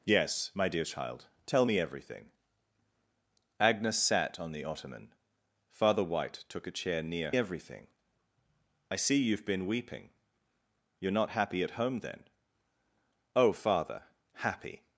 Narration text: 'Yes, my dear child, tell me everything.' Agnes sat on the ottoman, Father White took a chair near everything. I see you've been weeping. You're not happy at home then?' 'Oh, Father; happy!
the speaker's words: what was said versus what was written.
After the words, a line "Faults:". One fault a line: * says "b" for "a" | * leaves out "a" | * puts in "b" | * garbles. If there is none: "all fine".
'Yes, my dear child, tell me everything.' Agnes sat on the ottoman, Father White took a chair near everything. I see you've been weeping. You're not happy at home then?' 'Oh, Father; happy!
Faults:
all fine